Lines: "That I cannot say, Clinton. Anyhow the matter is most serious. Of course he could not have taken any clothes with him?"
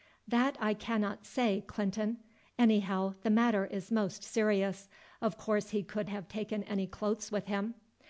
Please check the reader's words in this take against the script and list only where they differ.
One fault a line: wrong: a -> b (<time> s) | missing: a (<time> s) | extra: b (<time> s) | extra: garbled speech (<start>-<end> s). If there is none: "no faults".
missing: not (6.1 s)